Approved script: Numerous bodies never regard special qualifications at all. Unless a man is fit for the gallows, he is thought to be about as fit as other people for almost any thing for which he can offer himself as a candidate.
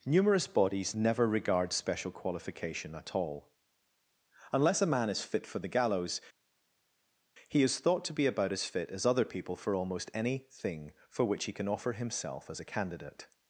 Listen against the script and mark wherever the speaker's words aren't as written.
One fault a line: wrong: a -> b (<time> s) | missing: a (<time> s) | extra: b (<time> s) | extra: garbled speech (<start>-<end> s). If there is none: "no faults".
wrong: qualifications -> qualification (2.1 s)